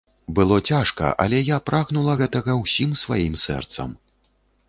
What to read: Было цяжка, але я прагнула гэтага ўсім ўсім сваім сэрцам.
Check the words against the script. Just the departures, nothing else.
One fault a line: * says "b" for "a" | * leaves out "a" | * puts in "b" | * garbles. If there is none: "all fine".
* leaves out "ўсім"